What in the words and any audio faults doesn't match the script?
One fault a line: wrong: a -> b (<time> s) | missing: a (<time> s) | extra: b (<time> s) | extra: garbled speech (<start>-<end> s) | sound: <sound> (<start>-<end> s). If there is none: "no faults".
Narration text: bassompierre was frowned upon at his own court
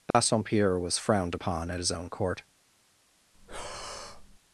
sound: dropout (0.1-0.1 s)
sound: breath (3.3-4.4 s)